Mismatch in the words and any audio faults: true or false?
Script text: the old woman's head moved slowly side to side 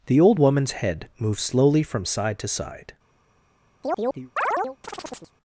true